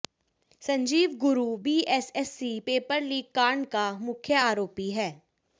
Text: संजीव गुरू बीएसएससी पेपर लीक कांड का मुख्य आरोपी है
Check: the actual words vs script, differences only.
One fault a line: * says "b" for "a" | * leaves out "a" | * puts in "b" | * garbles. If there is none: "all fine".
all fine